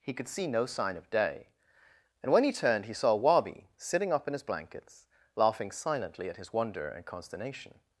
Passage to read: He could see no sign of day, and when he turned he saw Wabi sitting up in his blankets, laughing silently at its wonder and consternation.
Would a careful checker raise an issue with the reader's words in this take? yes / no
yes